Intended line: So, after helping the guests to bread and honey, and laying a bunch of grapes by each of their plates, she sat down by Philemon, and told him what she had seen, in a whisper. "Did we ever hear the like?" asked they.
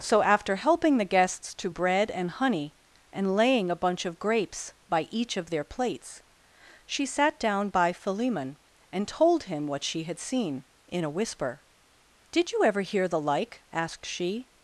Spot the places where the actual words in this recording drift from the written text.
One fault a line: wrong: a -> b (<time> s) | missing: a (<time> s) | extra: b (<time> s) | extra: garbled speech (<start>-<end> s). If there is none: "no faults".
wrong: we -> you (12.5 s)
wrong: they -> she (14.1 s)